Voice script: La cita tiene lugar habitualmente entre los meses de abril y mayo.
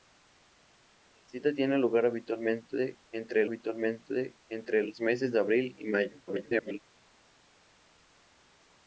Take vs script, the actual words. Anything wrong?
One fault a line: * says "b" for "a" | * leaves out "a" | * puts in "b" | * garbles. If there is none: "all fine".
* puts in "habitualmente entre"
* garbles